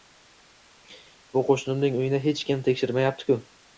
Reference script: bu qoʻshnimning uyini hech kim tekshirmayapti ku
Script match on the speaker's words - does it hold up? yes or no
yes